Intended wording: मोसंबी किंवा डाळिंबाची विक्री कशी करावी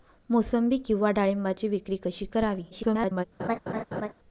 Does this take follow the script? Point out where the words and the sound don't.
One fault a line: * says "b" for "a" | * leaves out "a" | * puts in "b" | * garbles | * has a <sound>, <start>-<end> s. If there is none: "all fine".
* garbles
* has a laugh, 3.4-4.1 s